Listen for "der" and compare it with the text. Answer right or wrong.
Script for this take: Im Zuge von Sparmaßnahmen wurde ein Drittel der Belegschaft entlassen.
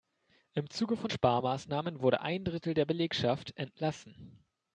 right